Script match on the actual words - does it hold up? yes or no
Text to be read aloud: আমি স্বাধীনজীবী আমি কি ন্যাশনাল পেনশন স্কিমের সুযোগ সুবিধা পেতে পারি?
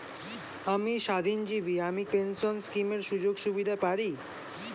no